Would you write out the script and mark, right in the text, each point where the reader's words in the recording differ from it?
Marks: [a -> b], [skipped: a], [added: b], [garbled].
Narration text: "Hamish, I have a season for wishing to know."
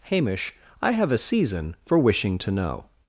"Hamish, I have a season for wishing to know."